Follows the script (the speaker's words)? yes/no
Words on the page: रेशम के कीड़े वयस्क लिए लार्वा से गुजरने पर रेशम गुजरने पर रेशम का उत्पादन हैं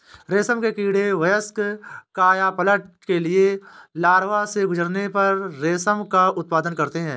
no